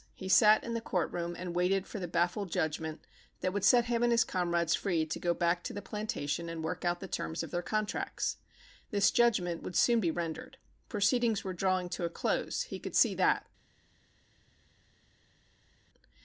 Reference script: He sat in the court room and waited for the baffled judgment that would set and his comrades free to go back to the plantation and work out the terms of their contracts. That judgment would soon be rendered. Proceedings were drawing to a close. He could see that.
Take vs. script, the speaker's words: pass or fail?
fail